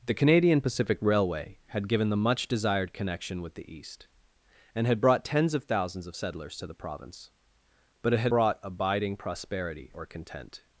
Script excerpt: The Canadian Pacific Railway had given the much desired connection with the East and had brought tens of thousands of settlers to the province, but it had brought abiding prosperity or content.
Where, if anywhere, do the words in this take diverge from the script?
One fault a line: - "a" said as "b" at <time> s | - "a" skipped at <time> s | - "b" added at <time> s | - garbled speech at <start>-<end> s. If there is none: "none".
none